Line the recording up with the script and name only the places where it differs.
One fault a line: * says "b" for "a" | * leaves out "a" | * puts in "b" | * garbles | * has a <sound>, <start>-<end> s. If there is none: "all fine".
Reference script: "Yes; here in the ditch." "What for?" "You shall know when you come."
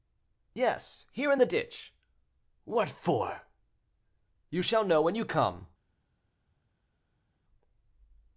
all fine